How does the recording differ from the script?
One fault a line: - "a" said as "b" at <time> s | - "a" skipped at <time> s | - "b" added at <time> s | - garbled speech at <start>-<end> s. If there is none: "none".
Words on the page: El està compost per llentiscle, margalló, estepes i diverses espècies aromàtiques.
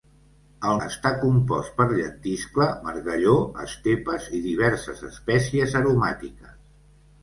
none